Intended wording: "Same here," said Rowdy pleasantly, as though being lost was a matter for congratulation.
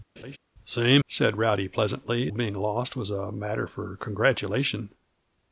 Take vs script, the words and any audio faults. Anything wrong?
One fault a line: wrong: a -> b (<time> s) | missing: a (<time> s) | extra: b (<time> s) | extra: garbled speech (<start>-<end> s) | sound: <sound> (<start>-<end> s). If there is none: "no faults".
sound: laugh (0.2-0.4 s)
missing: here (1.0 s)
missing: as though (2.3 s)